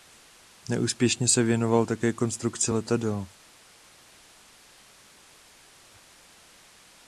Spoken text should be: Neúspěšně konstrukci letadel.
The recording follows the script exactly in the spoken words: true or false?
false